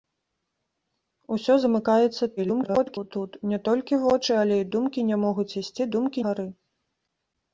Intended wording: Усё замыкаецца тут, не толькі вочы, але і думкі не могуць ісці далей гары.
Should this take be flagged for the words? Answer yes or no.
yes